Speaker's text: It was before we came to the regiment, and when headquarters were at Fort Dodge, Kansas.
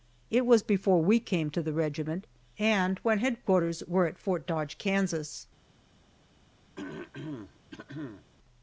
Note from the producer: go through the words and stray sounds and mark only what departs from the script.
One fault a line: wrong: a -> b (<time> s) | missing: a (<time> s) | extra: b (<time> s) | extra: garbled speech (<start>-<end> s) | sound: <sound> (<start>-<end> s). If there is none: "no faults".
sound: throat clearing (6.8-8.3 s)